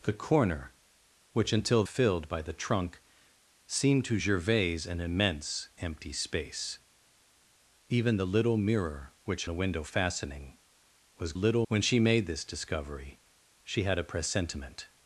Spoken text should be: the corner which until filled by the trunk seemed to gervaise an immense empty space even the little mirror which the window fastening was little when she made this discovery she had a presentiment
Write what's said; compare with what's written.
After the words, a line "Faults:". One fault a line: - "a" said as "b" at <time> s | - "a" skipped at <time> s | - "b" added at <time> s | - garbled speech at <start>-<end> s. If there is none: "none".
the corner which until filled by the trunk seemed to gervaise an immense empty space even the little mirror which the window fastening was little when she made this discovery she had a presentiment
Faults:
none